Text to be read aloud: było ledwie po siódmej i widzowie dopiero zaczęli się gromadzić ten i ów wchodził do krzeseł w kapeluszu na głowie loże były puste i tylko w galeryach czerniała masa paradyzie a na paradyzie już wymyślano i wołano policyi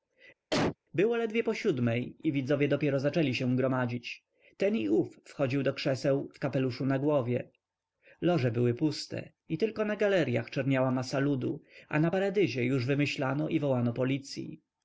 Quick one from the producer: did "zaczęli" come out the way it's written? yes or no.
yes